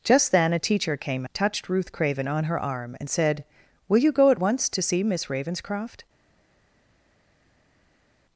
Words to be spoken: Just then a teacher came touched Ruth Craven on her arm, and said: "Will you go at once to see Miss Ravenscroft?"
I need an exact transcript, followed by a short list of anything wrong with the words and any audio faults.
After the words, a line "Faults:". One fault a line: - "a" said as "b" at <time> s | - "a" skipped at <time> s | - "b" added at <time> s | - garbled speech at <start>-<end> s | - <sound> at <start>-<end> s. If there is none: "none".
Just then a teacher came touched Ruth Craven on her arm, and said: "Will you go at once to see Miss Ravenscroft?"
Faults:
none